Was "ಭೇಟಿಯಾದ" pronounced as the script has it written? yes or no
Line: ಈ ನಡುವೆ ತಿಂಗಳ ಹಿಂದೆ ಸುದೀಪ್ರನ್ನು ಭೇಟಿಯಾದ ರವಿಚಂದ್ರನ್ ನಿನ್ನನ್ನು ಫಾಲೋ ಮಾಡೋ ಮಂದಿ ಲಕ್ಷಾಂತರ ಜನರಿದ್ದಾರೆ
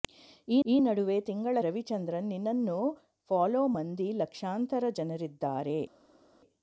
no